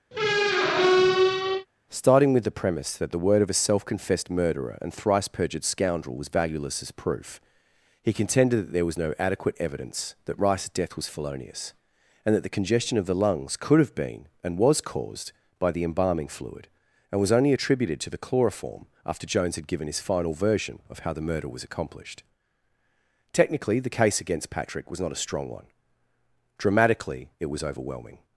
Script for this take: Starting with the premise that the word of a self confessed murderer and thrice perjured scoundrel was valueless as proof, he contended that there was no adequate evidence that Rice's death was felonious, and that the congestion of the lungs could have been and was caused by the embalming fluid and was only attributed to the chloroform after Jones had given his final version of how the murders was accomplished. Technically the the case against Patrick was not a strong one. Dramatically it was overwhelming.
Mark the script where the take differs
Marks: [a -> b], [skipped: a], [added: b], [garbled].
Starting with the premise that the word of a self confessed murderer and thrice perjured scoundrel was valueless as proof, he contended that there was no adequate evidence that Rice's death was felonious, and that the congestion of the lungs could have been and was caused by the embalming fluid and was only attributed to the chloroform after Jones had given his final version of how the [murders -> murder] was accomplished. Technically the [skipped: the] case against Patrick was not a strong one. Dramatically it was overwhelming.